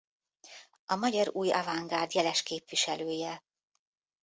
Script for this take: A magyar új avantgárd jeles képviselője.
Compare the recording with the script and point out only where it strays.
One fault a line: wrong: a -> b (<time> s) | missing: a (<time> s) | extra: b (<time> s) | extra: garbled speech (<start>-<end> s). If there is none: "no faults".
no faults